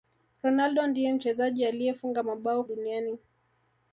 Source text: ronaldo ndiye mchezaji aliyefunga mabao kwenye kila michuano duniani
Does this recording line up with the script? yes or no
no